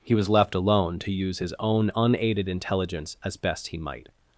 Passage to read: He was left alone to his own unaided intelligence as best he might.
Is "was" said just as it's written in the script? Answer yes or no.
yes